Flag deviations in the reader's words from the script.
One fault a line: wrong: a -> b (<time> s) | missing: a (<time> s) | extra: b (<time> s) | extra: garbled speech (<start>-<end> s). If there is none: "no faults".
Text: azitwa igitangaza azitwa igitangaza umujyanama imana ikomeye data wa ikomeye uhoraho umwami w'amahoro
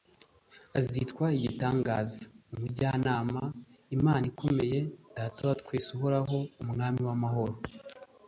missing: azitwa igitangaza (2.2 s)
wrong: ikomeye -> twese (5.6 s)